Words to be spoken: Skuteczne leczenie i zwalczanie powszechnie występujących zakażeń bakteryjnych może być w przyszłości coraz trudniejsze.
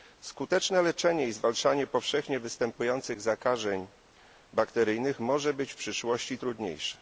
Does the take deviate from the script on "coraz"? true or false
true